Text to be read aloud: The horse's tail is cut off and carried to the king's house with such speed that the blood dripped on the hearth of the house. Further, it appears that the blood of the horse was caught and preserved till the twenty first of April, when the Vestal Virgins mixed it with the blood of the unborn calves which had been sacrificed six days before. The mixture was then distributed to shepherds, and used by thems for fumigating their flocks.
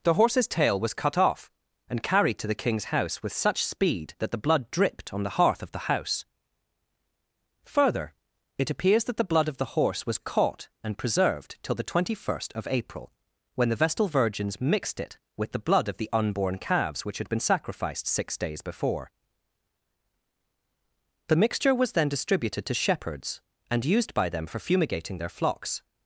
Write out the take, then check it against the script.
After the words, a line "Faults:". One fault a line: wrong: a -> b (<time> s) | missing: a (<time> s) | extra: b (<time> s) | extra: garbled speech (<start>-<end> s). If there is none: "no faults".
The horse's tail was cut off and carried to the king's house with such speed that the blood dripped on the hearth of the house. Further, it appears that the blood of the horse was caught and preserved till the twenty first of April, when the Vestal Virgins mixed it with the blood of the unborn calves which had been sacrificed six days before. The mixture was then distributed to shepherds, and used by them for fumigating their flocks.
Faults:
wrong: is -> was (0.8 s)
wrong: thems -> them (24.3 s)